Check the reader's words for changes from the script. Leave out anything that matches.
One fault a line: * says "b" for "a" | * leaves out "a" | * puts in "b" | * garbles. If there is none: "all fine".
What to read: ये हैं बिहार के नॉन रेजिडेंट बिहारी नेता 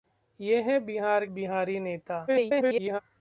* leaves out "के नॉन रेजिडेंट"
* garbles